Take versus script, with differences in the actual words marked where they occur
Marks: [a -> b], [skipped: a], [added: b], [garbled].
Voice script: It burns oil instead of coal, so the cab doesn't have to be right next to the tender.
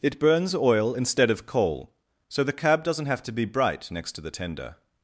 It burns oil instead of coal, so the cab doesn't have to be [right -> bright] next to the tender.